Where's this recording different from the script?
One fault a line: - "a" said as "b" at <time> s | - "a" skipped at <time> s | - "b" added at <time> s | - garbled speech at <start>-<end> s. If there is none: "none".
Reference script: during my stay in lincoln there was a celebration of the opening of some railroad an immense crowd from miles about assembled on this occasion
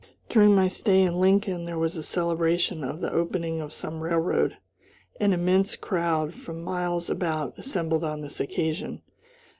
none